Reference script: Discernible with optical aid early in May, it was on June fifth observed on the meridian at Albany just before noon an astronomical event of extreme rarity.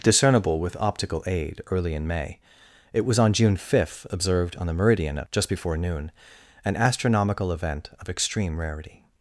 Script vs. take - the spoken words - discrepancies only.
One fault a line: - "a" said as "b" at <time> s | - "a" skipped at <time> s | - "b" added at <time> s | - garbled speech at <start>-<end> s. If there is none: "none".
- "Albany" skipped at 5.3 s